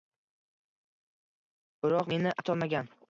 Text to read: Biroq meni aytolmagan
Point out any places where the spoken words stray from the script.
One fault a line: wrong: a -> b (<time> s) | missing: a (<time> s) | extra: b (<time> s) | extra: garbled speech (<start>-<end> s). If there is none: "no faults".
no faults